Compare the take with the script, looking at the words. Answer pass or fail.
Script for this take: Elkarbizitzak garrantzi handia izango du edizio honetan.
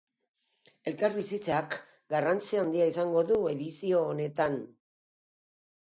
pass